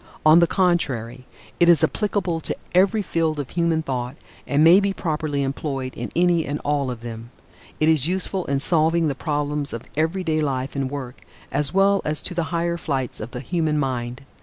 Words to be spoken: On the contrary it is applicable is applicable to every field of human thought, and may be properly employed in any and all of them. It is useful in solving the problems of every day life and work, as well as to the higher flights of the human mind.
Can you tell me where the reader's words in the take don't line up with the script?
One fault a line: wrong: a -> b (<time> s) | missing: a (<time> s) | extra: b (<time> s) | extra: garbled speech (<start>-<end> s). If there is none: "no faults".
missing: is applicable (2.4 s)